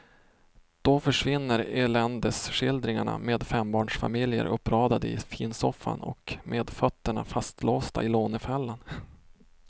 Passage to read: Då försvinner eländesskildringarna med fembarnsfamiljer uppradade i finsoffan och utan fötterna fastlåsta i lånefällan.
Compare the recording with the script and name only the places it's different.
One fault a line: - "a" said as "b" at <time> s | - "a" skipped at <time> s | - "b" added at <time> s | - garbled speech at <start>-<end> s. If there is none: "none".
- "utan" said as "med" at 6.4 s